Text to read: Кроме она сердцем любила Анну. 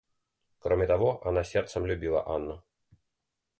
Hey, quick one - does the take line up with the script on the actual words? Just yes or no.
no